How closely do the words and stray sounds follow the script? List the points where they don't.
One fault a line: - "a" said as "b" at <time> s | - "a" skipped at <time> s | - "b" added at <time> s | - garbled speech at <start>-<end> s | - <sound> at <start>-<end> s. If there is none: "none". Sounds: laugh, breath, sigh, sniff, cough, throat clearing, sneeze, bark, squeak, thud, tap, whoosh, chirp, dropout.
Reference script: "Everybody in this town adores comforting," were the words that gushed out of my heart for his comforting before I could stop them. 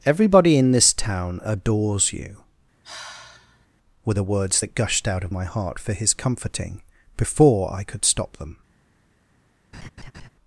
- "comforting" said as "you" at 2.1 s
- sigh at 2.8-3.7 s
- laugh at 9.7-10.3 s